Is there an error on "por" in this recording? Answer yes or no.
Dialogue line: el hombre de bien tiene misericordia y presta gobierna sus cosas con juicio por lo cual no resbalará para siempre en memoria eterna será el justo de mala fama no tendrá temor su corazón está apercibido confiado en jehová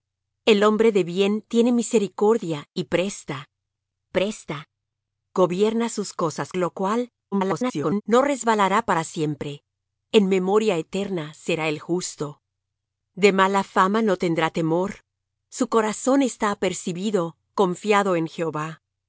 yes